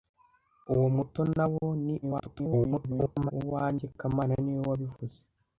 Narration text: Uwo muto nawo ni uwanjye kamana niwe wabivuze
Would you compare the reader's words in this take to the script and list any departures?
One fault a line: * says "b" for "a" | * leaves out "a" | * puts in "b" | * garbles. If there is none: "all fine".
* garbles